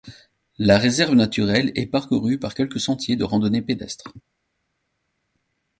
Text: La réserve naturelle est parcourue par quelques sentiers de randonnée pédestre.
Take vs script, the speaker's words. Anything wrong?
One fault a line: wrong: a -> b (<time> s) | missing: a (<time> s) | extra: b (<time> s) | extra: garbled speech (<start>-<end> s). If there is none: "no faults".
no faults